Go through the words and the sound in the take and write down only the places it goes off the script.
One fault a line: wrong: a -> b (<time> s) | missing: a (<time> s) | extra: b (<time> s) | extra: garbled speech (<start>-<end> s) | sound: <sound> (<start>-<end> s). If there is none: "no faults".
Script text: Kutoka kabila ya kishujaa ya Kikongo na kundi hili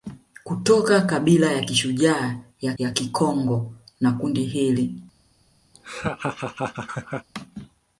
extra: ya (2.8 s)
sound: laugh (5.7-7.3 s)